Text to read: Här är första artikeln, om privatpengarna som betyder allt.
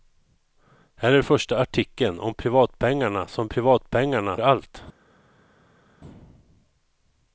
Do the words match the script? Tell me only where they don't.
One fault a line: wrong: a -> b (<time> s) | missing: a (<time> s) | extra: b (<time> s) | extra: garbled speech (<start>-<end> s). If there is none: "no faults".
wrong: betyder -> privatpengarna (3.4 s)